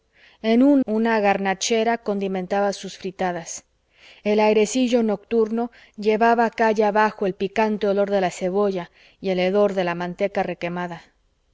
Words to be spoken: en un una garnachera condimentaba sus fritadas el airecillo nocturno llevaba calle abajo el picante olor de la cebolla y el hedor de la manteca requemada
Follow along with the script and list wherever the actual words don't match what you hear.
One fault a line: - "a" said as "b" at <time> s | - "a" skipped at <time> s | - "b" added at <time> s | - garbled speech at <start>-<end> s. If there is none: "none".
none